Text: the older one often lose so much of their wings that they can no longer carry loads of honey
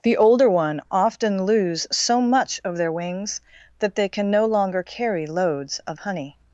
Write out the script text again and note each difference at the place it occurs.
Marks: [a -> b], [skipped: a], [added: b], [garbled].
the older one often lose so much of their wings that they can no longer carry loads of honey